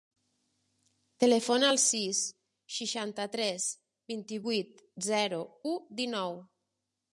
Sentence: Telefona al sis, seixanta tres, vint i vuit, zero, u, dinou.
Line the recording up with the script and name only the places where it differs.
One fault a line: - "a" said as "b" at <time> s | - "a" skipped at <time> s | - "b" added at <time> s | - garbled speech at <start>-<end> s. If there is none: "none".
none